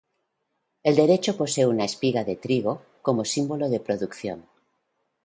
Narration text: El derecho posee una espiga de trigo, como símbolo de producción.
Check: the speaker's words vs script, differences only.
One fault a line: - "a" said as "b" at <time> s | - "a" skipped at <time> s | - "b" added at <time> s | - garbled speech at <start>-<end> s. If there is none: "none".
none